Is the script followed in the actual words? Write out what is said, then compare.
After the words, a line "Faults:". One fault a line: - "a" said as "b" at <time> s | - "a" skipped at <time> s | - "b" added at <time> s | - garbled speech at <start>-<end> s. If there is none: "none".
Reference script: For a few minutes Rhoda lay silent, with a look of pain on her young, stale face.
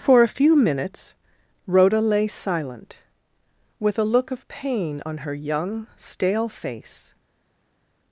For a few minutes Rhoda lay silent, with a look of pain on her young, stale face.
Faults:
none